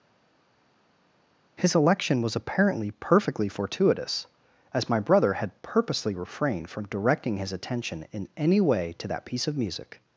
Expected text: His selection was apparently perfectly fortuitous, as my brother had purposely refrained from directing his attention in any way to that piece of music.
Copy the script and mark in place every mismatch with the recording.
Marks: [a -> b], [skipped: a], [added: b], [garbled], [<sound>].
His [selection -> election] was apparently perfectly fortuitous, as my brother had purposely refrained from directing his attention in any way to that piece of music.